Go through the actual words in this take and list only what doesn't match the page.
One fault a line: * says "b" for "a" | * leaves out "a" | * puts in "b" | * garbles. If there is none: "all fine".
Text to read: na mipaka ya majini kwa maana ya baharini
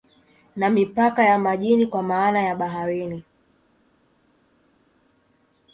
all fine